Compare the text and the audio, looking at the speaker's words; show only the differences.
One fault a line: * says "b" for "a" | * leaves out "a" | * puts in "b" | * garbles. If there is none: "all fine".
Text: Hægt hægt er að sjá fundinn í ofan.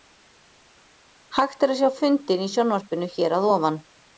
* leaves out "hægt"
* puts in "sjónvarpinu hér að"